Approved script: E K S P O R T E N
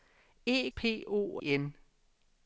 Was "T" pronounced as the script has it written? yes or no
no